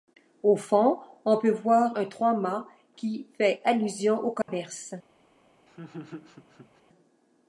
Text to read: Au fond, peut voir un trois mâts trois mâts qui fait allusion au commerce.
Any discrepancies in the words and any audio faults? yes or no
yes